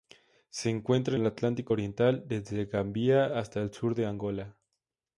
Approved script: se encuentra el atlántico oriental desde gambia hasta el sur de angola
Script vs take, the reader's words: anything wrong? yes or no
no